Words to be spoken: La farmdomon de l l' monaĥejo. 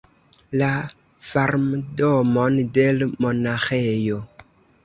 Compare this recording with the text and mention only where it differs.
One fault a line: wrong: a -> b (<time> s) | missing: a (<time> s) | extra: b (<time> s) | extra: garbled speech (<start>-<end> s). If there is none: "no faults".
missing: l (3.1 s)